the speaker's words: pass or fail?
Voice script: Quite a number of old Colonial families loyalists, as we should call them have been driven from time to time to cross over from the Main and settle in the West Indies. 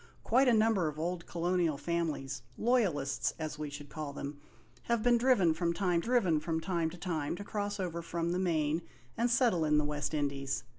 fail